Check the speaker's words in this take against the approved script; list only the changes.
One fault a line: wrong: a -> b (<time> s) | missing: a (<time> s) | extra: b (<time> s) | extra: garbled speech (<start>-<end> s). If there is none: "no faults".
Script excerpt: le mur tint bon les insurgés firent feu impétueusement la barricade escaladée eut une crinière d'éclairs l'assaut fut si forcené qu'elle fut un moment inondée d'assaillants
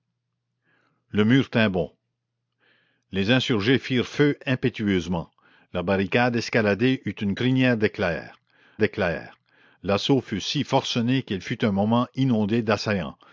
extra: d'éclairs (8.8 s)